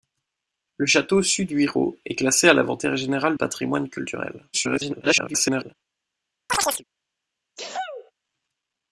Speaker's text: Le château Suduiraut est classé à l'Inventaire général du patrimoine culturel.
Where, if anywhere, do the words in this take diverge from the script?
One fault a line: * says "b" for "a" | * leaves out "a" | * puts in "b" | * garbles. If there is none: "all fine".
* leaves out "du"
* garbles